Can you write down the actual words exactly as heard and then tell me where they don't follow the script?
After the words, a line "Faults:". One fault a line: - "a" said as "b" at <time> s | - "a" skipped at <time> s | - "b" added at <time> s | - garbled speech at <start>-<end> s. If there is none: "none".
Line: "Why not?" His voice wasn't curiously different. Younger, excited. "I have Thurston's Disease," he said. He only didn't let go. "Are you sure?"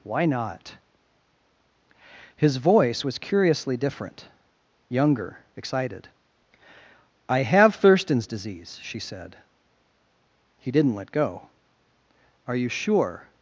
"Why not?" His voice was curiously different. Younger, excited. "I have Thurston's Disease," she said. He didn't let go. "Are you sure?"
Faults:
- "wasn't" said as "was" at 3.0 s
- "he" said as "she" at 8.8 s
- "only" skipped at 10.7 s